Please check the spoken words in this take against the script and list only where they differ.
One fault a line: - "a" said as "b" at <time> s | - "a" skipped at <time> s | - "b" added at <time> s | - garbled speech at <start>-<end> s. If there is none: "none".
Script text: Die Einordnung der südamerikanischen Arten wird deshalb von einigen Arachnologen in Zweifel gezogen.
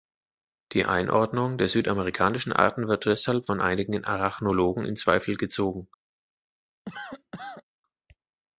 none